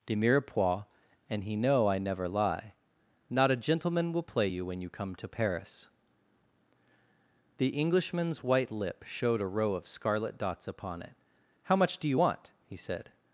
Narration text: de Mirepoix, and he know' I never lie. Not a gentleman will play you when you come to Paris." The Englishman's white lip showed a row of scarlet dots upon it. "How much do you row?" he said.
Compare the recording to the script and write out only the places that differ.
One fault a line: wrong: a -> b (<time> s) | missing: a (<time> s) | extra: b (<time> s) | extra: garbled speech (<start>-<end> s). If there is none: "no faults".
wrong: row -> want (12.1 s)